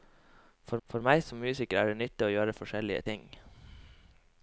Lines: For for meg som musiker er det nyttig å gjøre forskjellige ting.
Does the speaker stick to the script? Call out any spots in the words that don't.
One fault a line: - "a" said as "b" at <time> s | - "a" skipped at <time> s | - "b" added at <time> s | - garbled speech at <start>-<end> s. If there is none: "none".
none